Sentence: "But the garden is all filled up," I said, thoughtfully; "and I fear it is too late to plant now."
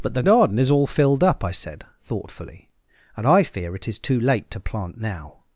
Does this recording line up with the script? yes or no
yes